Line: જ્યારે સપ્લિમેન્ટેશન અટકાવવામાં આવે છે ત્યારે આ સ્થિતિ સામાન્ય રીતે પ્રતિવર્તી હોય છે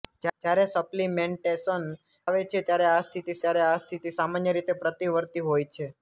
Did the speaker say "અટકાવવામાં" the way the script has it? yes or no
no